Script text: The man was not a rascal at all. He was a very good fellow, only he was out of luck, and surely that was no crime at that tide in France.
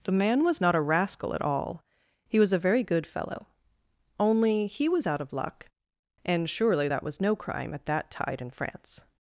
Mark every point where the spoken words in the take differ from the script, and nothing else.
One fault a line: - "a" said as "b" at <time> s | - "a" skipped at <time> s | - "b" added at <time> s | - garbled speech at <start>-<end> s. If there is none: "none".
none